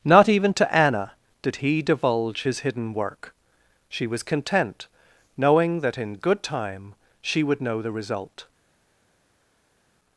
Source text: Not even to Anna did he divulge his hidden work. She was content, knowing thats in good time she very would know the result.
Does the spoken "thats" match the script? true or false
false